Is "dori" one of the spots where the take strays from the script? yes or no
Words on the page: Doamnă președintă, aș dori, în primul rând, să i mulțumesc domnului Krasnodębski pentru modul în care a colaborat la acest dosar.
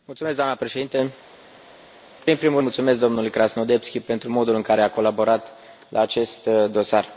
yes